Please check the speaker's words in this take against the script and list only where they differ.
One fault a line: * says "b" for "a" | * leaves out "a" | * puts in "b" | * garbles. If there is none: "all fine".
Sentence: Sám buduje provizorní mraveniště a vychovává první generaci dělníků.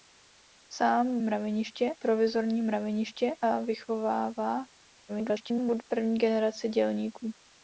* says "mraveniště" for "buduje"
* garbles